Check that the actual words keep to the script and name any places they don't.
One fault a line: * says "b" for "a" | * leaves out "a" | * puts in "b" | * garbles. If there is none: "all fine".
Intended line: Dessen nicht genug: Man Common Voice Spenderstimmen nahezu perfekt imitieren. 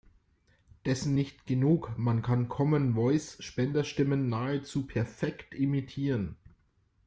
* puts in "kann"